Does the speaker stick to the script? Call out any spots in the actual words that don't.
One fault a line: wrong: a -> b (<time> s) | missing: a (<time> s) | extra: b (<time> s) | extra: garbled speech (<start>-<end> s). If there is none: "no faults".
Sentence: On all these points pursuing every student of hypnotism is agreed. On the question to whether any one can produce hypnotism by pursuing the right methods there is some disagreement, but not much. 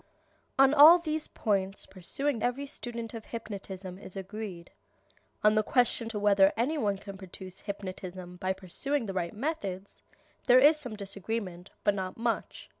no faults